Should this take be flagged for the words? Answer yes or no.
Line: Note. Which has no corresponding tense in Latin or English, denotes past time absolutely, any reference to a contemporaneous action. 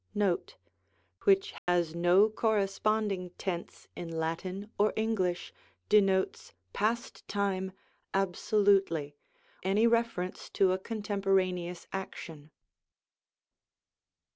no